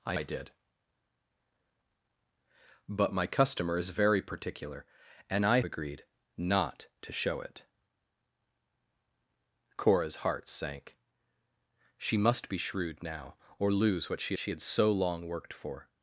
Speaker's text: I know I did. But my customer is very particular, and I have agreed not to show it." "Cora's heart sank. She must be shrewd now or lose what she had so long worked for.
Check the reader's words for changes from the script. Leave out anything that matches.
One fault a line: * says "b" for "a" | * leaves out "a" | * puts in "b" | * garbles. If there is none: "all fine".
* leaves out "know"
* leaves out "have"
* puts in "she"